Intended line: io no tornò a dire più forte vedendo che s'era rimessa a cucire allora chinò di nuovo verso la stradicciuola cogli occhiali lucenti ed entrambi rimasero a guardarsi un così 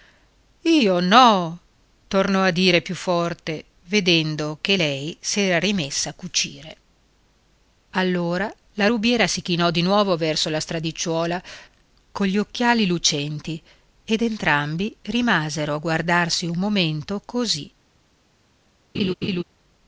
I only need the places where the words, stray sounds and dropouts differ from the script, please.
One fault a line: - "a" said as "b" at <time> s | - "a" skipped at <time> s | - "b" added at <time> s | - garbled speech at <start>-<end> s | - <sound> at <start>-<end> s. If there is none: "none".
- "lei" added at 4.7 s
- "la rubiera si" added at 8.7 s
- "momento" added at 16.6 s
- laugh at 18.9-19.4 s